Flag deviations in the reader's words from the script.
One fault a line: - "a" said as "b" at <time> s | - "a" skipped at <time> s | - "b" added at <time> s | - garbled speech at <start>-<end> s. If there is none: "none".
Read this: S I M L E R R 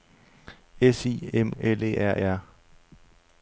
none